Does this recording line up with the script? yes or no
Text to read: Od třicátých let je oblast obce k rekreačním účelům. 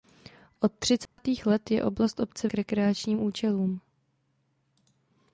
yes